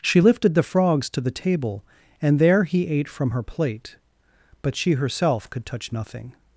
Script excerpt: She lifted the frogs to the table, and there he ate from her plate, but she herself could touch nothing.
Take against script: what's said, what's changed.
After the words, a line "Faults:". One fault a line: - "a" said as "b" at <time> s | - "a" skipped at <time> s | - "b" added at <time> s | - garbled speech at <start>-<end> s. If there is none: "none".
She lifted the frogs to the table, and there he ate from her plate, but she herself could touch nothing.
Faults:
none